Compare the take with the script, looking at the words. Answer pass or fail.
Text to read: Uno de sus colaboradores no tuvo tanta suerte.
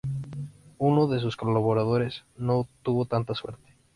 pass